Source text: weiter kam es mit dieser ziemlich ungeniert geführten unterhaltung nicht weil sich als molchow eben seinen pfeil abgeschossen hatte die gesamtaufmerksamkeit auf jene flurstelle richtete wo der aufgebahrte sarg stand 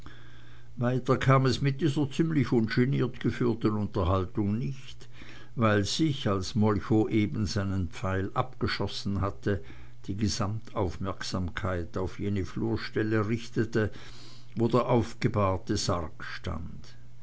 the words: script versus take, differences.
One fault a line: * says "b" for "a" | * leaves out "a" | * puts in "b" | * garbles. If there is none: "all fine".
all fine